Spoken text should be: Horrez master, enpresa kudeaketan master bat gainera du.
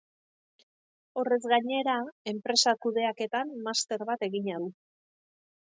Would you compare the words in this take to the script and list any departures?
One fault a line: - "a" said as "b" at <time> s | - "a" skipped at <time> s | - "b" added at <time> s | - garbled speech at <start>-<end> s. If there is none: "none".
- "master" said as "gainera" at 1.5 s
- "gainera" said as "egina" at 4.3 s